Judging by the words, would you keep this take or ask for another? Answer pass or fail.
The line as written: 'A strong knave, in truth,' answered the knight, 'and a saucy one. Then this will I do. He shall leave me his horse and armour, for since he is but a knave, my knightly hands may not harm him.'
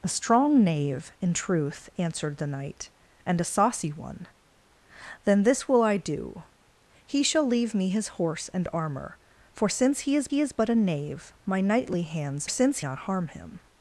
fail